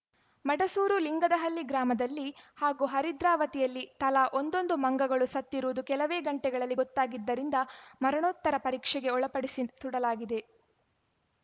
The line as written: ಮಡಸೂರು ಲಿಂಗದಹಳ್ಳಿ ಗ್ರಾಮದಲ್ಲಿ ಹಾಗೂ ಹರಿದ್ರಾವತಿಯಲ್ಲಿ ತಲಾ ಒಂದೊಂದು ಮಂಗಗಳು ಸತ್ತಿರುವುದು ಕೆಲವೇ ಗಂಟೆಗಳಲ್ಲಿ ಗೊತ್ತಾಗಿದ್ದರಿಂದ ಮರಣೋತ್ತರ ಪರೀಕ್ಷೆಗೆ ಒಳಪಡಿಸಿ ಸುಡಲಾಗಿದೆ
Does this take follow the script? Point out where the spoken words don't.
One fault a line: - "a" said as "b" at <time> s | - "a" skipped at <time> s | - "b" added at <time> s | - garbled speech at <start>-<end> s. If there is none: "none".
none